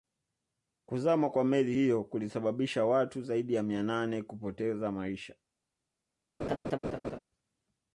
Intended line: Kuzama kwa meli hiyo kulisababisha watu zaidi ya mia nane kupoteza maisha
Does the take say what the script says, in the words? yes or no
yes